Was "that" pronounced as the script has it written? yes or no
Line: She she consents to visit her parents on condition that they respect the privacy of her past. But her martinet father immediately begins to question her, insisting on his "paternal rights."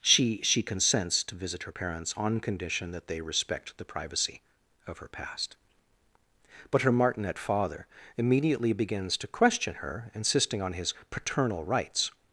yes